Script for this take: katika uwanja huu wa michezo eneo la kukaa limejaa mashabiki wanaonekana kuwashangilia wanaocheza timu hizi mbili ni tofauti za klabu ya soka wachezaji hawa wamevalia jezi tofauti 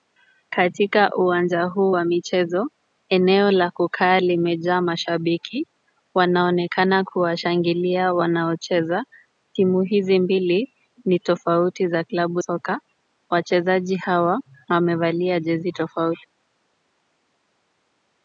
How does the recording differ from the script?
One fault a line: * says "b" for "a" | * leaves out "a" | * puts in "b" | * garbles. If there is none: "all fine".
* leaves out "ya"